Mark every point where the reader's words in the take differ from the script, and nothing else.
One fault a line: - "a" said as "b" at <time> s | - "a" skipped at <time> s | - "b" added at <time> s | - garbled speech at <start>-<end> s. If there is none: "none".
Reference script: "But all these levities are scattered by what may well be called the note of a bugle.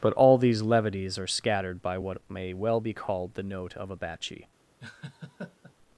- "bugle" said as "batchy" at 4.0 s